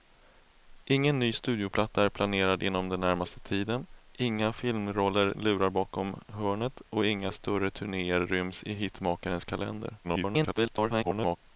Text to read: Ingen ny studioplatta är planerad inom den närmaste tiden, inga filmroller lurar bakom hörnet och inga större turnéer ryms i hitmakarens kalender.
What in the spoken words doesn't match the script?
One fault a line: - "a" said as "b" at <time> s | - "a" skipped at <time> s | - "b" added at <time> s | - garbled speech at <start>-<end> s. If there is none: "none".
- garbled speech at 10.0-11.4 s